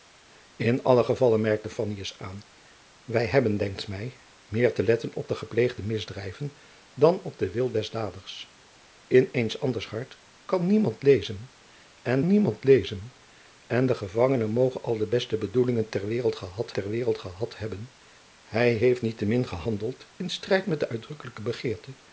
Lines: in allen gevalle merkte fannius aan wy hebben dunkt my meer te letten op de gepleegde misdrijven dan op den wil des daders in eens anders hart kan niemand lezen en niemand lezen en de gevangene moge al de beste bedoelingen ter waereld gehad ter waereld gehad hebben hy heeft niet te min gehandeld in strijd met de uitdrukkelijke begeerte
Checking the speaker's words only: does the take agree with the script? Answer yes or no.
yes